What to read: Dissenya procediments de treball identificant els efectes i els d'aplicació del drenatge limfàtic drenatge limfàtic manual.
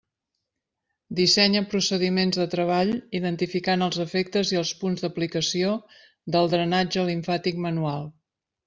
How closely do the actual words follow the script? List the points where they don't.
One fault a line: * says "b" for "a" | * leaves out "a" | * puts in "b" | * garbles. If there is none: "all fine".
* puts in "punts"
* leaves out "drenatge limfàtic"